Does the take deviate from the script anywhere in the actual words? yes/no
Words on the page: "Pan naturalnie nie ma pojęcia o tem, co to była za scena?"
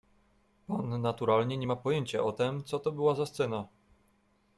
no